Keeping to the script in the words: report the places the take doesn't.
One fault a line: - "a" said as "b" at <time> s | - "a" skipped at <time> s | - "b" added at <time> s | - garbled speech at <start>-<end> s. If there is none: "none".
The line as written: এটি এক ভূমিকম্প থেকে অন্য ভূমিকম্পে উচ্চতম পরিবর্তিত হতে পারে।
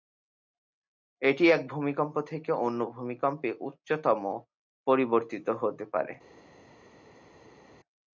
none